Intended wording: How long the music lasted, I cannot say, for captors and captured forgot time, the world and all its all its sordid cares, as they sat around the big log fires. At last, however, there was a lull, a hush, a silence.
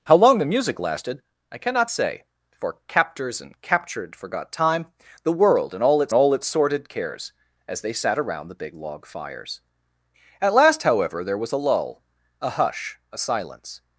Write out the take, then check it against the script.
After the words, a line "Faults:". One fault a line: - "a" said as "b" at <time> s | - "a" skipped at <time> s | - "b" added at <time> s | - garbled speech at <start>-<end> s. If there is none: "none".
How long the music lasted, I cannot say, for captors and captured forgot time, the world and all its all its sordid cares, as they sat around the big log fires. At last, however, there was a lull, a hush, a silence.
Faults:
none